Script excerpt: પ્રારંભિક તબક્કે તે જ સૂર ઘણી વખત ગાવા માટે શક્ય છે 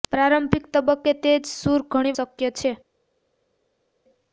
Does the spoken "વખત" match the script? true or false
false